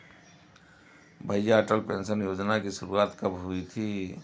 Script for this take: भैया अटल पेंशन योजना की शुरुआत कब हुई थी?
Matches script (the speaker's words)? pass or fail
pass